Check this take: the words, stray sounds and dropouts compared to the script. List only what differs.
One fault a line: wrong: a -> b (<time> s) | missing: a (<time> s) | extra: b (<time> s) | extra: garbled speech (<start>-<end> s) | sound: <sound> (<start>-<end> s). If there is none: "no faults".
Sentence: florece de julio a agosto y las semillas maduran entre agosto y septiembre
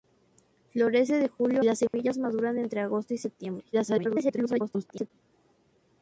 missing: a agosto y (1.6 s)
sound: dropout (1.9-1.9 s)
extra: garbled speech (3.7-5.1 s)